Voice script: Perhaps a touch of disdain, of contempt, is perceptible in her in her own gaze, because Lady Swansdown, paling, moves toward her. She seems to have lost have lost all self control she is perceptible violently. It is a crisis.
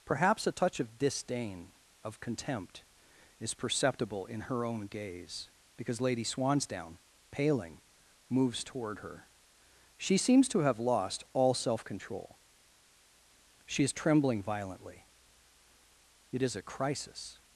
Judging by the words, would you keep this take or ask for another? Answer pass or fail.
fail